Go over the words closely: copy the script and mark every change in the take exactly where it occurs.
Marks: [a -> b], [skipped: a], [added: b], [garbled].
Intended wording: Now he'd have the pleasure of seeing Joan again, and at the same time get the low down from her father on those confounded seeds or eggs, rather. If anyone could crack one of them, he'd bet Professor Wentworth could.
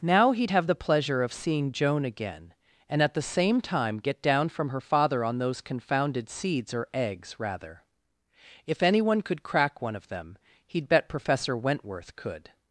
Now he'd have the pleasure of seeing Joan again, and at the same time get [skipped: the low] down from her father on those confounded seeds or eggs, rather. If anyone could crack one of them, he'd bet Professor Wentworth could.